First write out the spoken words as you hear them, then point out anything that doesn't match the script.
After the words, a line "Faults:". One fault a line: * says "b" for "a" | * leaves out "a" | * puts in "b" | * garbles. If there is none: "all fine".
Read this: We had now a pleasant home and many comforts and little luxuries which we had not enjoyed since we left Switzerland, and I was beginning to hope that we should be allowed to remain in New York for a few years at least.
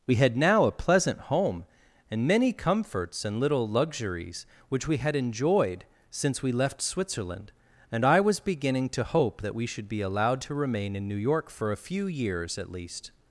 We had now a pleasant home and many comforts and little luxuries which we had enjoyed since we left Switzerland, and I was beginning to hope that we should be allowed to remain in New York for a few years at least.
Faults:
* leaves out "not"